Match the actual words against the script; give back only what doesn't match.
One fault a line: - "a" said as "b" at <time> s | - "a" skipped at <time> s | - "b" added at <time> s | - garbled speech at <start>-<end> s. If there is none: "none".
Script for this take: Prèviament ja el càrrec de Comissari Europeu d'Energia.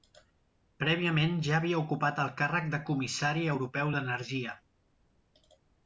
- "havia ocupat" added at 1.6 s